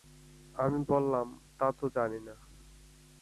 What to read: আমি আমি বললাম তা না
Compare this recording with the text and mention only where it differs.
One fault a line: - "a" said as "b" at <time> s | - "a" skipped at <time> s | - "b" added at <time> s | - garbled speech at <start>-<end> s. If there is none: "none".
- "আমি" skipped at 0.8 s
- "তো জানি" added at 1.7 s